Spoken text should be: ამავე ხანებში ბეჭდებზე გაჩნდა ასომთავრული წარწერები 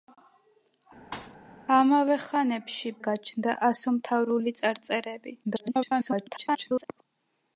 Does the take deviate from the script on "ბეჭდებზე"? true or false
true